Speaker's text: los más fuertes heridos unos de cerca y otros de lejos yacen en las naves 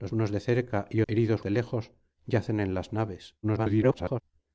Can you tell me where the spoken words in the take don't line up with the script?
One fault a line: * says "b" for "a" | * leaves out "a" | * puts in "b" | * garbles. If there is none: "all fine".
* leaves out "más fuertes heridos"
* says "heridos" for "otros"
* garbles